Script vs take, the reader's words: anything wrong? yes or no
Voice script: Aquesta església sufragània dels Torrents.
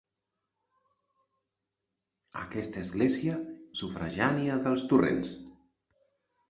no